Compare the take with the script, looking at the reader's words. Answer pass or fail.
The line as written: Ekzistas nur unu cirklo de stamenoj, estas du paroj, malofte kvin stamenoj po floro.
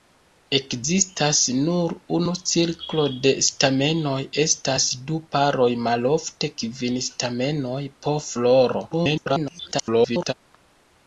fail